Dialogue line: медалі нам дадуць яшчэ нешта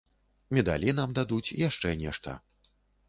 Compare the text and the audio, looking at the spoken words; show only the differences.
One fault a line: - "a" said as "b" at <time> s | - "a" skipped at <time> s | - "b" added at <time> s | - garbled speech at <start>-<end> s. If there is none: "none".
none